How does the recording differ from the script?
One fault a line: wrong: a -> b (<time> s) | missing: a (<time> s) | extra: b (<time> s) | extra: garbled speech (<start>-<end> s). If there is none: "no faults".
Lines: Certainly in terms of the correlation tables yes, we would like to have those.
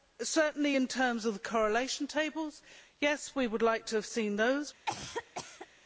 extra: seen (4.0 s)